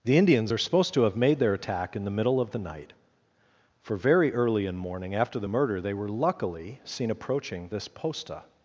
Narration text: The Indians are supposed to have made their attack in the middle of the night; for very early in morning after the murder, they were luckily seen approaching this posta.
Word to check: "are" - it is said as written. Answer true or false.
true